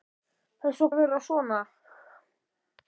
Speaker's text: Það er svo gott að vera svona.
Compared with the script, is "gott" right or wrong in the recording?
wrong